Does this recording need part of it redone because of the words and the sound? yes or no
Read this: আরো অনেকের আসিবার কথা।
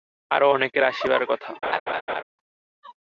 yes